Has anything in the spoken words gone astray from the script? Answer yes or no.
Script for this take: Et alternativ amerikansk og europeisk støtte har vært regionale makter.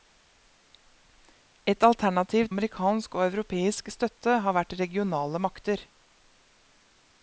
no